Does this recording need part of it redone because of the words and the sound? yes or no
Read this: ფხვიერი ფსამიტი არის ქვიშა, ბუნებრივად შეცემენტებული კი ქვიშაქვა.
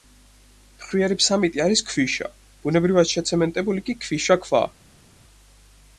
no